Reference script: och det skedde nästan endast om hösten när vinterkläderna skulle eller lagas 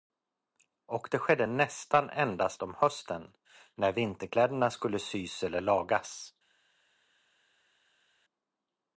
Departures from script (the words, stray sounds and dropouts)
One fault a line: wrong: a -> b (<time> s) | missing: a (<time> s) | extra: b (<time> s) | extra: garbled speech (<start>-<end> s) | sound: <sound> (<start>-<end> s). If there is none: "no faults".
extra: sys (5.0 s)